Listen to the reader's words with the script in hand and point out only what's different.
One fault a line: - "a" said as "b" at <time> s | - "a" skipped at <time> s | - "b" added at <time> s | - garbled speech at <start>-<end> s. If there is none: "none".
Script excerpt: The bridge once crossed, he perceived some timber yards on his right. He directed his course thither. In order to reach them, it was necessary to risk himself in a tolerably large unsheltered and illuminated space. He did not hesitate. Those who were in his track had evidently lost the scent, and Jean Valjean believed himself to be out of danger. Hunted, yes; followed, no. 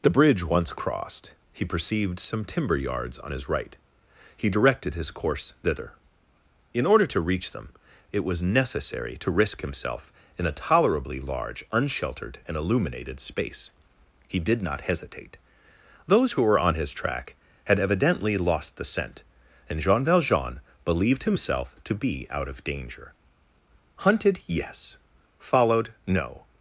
- "in" said as "on" at 16.6 s